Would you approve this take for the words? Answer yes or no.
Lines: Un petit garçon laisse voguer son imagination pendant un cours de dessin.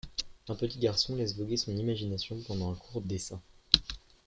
no